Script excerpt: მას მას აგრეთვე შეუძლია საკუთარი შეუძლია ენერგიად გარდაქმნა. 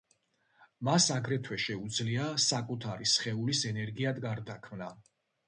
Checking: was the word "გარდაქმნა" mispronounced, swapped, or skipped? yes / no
no